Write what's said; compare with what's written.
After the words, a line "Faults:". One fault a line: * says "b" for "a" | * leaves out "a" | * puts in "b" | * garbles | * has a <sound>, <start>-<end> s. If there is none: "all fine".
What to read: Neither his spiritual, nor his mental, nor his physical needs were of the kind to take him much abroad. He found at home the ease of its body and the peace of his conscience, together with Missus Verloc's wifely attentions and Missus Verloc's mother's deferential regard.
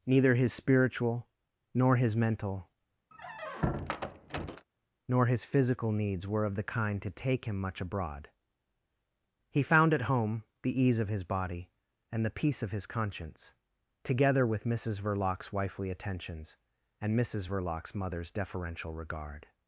Neither his spiritual, nor his mental, nor his physical needs were of the kind to take him much abroad. He found at home the ease of his body and the peace of his conscience, together with Missus Verloc's wifely attentions and Missus Verloc's mother's deferential regard.
Faults:
* has a squeak, 3.1-4.7 s
* says "his" for "its"